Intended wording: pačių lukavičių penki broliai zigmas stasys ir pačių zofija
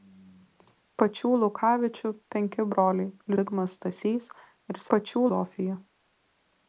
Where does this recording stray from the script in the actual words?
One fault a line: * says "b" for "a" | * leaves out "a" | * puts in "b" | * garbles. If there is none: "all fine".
all fine